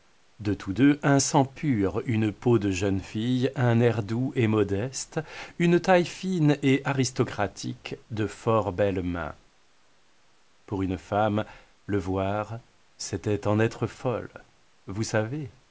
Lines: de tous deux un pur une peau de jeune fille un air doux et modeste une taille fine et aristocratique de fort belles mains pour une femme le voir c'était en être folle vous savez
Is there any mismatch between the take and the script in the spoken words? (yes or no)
yes